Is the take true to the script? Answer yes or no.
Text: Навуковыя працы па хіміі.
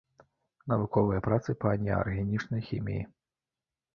no